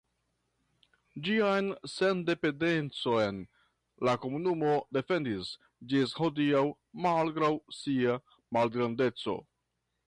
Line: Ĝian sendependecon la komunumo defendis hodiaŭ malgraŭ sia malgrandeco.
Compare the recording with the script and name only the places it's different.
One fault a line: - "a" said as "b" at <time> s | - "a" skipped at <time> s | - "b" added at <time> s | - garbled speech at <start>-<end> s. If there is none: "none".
- "ĝis" added at 5.9 s